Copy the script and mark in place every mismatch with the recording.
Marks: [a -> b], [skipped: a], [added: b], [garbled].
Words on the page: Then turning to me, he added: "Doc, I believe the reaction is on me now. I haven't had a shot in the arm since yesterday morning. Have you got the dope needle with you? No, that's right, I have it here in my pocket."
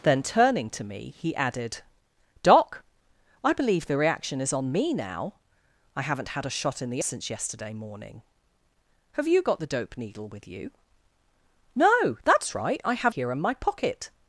Then turning to me, he added: "Doc, I believe the reaction is on me now. I haven't had a shot in the [skipped: arm] since yesterday morning. Have you got the dope needle with you? No, that's right, I have [skipped: it] here in my pocket."